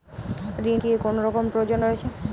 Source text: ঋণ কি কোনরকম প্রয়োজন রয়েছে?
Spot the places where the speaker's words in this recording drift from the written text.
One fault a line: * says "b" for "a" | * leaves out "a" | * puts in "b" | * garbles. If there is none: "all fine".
all fine